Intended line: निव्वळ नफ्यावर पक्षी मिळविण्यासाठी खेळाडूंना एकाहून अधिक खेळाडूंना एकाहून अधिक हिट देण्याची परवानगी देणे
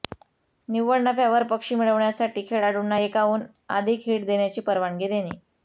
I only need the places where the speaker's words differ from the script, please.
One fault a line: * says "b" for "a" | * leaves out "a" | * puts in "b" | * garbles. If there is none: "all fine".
* leaves out "खेळाडूंना एकाहून अधिक"